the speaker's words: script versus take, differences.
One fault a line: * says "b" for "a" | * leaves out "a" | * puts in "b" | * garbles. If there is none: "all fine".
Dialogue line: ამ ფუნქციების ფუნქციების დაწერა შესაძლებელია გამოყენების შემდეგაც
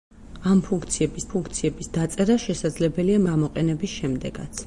all fine